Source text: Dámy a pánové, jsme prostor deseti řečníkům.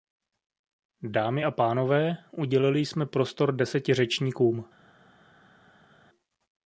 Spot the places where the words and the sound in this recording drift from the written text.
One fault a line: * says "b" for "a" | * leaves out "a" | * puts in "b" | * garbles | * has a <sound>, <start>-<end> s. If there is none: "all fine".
* puts in "udělili"